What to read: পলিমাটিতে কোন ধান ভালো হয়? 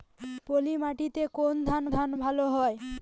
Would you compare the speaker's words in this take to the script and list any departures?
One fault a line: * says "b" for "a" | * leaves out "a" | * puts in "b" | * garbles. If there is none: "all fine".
* puts in "ধান"